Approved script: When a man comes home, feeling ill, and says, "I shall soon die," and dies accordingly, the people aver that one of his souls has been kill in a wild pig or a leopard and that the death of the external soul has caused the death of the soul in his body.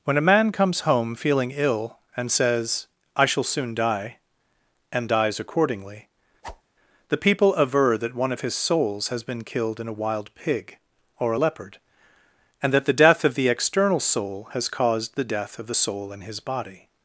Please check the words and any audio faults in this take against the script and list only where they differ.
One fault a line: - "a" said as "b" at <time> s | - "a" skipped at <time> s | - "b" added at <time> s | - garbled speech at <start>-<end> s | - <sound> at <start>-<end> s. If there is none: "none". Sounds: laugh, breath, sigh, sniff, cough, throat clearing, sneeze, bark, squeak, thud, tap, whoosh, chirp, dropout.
- whoosh at 6.4-6.6 s
- "kill" said as "killed" at 9.4 s